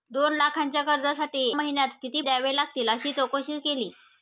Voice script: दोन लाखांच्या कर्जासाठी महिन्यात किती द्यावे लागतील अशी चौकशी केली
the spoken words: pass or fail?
pass